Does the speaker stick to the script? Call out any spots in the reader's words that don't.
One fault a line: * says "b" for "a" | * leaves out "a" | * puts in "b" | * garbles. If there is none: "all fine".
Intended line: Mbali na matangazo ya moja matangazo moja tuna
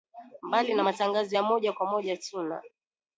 * says "kwa" for "matangazo"